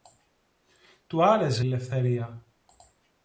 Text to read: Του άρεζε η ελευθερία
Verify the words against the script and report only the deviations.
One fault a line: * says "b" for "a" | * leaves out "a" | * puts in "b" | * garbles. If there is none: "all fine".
* leaves out "η"